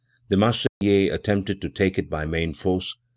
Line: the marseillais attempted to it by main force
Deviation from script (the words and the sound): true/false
true